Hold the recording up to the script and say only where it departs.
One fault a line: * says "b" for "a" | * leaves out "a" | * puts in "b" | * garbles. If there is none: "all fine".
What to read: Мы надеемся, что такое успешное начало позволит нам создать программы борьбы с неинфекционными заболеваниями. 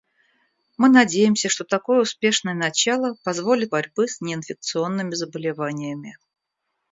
* leaves out "нам создать программы"